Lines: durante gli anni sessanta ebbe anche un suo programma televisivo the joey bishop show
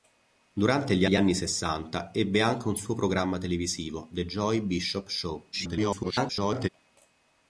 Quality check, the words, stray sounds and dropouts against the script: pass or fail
fail